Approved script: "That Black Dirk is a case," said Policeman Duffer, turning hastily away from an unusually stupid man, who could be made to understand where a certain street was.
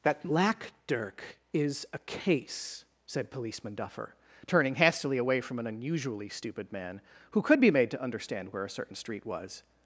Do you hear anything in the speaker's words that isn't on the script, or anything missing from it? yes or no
no